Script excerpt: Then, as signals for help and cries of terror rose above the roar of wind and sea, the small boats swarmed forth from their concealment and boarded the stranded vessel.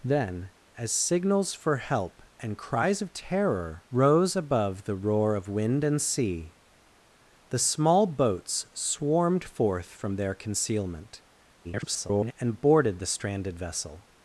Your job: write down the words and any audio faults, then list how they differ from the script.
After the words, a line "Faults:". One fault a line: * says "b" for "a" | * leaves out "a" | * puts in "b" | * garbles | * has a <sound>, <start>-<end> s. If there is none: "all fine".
Then, as signals for help and cries of terror rose above the roar of wind and sea, the small boats swarmed forth from their concealment [garbled] and boarded the stranded vessel.
Faults:
* garbles